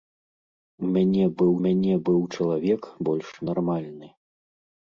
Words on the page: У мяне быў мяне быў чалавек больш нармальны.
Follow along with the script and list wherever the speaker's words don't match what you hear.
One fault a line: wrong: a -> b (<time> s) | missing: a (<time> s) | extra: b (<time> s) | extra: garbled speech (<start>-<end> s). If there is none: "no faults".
no faults